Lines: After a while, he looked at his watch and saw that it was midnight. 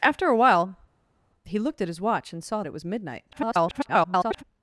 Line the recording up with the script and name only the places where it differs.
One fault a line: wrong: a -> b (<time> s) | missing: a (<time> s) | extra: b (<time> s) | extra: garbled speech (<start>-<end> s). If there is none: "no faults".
missing: that (2.6 s)
extra: garbled speech (3.3-4.4 s)